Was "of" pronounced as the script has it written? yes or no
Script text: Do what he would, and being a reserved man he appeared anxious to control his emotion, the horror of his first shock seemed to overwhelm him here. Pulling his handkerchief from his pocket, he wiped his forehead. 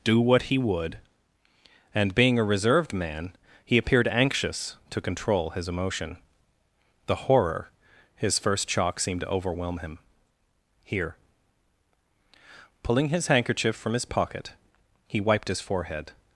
no